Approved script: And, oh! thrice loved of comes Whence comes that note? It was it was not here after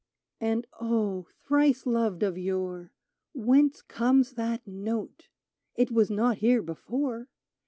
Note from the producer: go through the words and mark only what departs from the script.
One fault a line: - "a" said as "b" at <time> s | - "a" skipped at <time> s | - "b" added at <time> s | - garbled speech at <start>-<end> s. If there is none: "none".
- "comes" said as "yore" at 2.4 s
- "it was" skipped at 6.1 s
- "after" said as "before" at 6.6 s